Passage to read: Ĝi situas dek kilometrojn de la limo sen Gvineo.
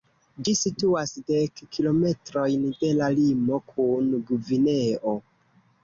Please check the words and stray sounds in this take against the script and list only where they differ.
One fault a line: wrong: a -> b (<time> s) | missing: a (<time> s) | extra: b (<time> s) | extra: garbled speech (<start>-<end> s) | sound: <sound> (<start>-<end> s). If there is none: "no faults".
wrong: sen -> kun (3.8 s)